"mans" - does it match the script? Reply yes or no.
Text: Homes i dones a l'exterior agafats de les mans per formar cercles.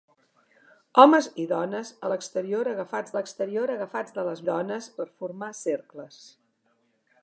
no